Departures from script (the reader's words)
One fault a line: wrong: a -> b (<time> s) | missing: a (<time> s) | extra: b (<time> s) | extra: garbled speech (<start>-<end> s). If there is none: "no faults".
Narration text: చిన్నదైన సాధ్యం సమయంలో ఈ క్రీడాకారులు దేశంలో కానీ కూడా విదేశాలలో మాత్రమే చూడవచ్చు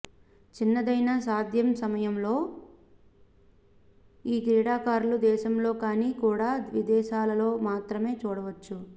no faults